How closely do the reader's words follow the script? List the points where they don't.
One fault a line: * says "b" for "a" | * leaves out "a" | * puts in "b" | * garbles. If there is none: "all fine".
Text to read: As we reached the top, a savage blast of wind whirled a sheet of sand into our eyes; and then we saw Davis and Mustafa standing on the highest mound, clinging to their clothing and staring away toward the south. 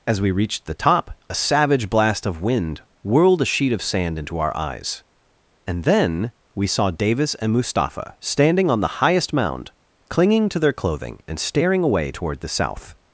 all fine